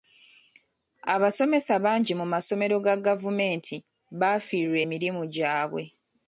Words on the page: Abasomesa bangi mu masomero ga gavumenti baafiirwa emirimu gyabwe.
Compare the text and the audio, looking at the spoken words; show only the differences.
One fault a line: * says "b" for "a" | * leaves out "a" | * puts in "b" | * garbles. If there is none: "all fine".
all fine